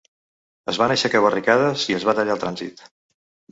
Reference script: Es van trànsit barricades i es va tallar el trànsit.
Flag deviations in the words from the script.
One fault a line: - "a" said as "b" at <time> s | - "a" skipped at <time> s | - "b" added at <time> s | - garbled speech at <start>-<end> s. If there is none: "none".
- "trànsit" said as "aixecar" at 0.9 s